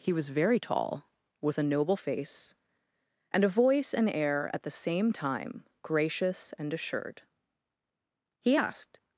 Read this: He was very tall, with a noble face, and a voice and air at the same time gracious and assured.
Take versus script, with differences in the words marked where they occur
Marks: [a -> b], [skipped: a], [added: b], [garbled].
He was very tall, with a noble face, and a voice and air at the same time gracious and assured. [added: He asked]